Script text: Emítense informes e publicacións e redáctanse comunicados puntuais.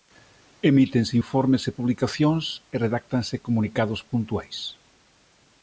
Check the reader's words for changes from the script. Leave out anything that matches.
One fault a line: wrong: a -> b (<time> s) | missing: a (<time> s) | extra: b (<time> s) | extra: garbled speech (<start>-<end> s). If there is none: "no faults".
no faults